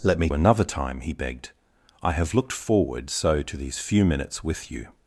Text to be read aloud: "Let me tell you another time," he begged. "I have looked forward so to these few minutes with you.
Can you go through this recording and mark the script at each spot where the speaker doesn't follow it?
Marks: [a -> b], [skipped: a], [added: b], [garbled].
"Let me [skipped: tell you] another time," he begged. "I have looked forward so to these few minutes with you.